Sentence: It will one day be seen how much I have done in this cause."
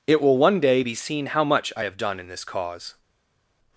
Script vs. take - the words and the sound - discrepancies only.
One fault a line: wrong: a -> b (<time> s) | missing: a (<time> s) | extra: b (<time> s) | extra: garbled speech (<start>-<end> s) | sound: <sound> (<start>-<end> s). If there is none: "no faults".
no faults